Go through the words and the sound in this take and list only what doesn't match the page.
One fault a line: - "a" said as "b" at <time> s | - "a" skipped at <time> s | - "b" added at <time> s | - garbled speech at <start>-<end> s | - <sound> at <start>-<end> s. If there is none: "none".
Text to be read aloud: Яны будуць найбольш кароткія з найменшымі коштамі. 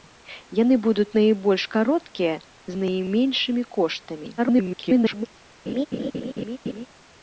- garbled speech at 4.4-5.3 s
- laugh at 5.7-6.9 s